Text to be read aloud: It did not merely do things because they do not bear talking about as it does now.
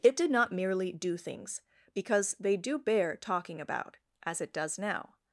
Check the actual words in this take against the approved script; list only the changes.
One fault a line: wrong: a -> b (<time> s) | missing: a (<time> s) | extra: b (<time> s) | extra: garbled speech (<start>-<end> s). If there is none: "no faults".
missing: not (2.8 s)